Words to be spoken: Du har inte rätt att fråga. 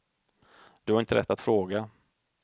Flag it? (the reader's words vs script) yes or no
no